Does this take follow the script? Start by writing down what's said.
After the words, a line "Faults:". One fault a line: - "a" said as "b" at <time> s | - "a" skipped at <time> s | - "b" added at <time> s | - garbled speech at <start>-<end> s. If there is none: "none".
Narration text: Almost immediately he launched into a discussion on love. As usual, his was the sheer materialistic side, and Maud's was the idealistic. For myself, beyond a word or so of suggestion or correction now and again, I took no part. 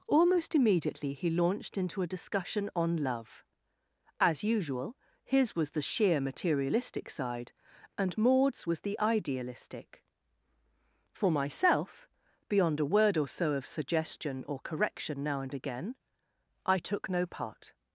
Almost immediately he launched into a discussion on love. As usual, his was the sheer materialistic side, and Maud's was the idealistic. For myself, beyond a word or so of suggestion or correction now and again, I took no part.
Faults:
none